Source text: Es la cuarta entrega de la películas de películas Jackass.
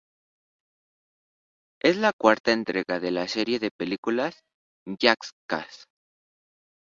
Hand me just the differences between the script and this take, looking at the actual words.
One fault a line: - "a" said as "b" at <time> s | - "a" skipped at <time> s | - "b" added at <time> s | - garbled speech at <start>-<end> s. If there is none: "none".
- "películas" said as "serie" at 3.3 s